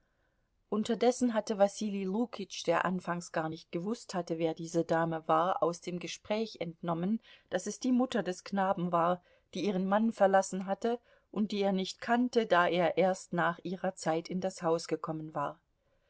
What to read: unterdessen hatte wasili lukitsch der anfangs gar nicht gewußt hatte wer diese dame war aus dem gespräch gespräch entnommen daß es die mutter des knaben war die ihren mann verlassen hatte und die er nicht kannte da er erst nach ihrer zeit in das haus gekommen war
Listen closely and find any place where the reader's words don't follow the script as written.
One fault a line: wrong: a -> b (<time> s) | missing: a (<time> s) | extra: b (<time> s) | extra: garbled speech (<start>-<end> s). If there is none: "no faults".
missing: gespräch (6.6 s)